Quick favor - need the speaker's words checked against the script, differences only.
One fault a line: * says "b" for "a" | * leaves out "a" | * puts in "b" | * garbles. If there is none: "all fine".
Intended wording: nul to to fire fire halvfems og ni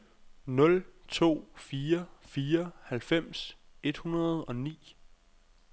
* leaves out "to"
* puts in "et hundrede"